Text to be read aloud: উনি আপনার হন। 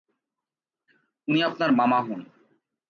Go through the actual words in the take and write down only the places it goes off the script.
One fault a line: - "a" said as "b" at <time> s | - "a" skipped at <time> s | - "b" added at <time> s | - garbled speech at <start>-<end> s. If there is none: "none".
- "মামা" added at 1.7 s